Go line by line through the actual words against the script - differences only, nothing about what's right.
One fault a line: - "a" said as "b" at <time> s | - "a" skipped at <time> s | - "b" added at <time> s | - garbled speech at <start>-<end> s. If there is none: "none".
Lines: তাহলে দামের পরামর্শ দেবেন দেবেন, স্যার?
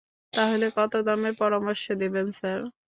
- "কত" added at 0.8 s
- "দেবেন" skipped at 2.3 s